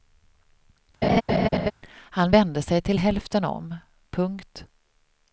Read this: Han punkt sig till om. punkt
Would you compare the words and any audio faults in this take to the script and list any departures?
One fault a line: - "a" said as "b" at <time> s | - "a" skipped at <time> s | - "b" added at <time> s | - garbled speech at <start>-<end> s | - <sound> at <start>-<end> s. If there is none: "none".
- laugh at 1.0-1.7 s
- "punkt" said as "vände" at 2.3 s
- "hälften" added at 3.0 s